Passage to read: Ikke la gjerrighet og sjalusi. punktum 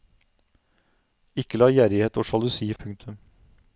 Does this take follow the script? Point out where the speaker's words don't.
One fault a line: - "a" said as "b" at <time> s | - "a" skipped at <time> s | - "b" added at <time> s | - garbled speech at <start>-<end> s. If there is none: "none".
none